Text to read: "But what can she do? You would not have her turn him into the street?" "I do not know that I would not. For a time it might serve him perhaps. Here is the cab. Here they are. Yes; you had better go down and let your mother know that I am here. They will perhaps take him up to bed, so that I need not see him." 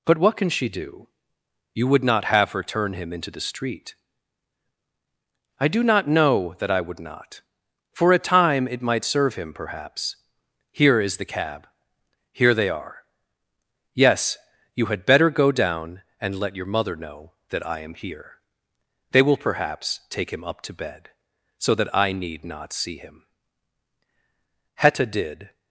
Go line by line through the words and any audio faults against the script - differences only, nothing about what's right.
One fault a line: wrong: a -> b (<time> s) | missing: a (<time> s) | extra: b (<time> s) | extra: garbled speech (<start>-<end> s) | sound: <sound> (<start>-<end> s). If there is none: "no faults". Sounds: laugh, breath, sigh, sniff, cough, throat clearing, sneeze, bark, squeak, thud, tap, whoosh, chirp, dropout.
extra: Hetta did (24.8 s)